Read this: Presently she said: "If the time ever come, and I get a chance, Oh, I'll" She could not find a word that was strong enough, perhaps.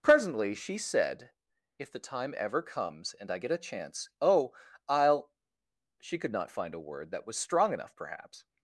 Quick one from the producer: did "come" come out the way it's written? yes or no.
no